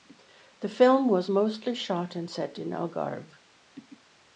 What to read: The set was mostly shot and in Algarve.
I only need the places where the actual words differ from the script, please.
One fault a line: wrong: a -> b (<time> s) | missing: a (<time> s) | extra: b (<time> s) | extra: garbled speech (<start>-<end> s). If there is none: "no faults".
wrong: set -> film (0.7 s)
extra: set (2.3 s)